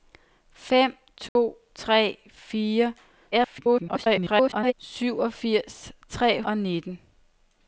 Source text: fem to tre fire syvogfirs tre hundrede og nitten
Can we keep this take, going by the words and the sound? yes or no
no